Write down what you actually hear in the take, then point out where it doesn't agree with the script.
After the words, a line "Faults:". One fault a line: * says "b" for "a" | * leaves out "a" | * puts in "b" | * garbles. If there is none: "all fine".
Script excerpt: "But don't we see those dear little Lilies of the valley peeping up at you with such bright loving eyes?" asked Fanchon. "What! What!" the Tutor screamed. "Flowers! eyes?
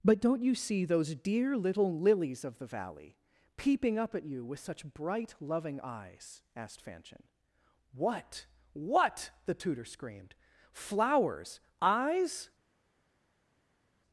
"But don't you see those dear little Lilies of the valley peeping up at you with such bright loving eyes?" asked Fanchon. "What! What!" the Tutor screamed. "Flowers! eyes?
Faults:
* says "you" for "we"